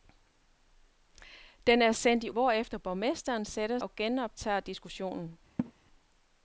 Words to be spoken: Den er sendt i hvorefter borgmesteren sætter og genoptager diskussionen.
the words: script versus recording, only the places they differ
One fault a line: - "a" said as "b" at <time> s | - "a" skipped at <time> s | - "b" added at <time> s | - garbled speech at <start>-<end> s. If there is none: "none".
none